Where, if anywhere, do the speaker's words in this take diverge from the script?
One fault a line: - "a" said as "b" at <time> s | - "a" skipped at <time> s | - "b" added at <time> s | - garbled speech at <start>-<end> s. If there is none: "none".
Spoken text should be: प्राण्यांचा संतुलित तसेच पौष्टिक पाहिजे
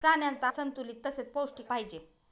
none